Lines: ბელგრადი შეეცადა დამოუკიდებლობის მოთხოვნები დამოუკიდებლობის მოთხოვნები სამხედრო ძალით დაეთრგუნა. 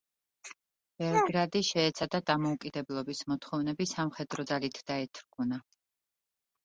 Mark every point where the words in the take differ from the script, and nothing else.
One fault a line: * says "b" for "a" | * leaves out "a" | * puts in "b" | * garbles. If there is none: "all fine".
* leaves out "დამოუკიდებლობის მოთხოვნები"